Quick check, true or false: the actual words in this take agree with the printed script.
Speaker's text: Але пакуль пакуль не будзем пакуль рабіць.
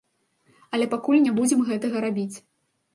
false